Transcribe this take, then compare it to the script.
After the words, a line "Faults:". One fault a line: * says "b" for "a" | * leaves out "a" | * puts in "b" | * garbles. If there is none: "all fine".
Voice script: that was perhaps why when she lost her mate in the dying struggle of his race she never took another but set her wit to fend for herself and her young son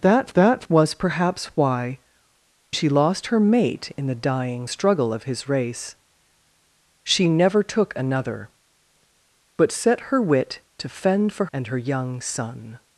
that that was perhaps why she lost her mate in the dying struggle of his race she never took another but set her wit to fend for and her young son
Faults:
* puts in "that"
* leaves out "when"
* leaves out "herself"